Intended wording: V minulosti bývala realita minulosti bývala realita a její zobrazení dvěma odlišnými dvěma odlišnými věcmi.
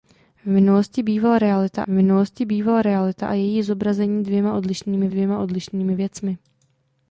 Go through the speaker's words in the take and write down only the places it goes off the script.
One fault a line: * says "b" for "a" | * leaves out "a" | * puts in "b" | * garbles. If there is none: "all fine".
all fine